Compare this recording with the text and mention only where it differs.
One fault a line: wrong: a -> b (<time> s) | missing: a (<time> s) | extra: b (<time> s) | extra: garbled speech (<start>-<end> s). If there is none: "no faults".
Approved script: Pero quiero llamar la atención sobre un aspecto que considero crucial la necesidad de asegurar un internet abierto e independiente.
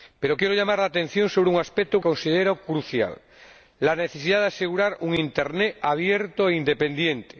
missing: que (2.0 s)